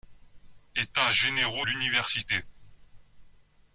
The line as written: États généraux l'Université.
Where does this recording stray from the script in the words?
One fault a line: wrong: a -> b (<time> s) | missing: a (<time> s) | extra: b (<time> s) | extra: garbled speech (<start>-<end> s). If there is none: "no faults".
no faults